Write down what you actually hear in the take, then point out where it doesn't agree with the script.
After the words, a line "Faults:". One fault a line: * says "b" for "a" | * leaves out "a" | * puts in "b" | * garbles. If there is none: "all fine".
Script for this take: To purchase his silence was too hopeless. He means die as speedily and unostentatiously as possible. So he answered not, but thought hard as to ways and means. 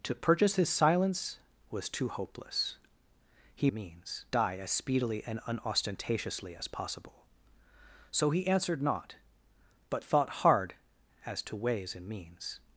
To purchase his silence was too hopeless. He means die as speedily and unostentatiously as possible. So he answered not, but thought hard as to ways and means.
Faults:
all fine